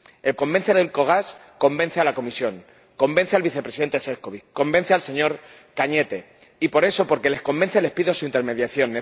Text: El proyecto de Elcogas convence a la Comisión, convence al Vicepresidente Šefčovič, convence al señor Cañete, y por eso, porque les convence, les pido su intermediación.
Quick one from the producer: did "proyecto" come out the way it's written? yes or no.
no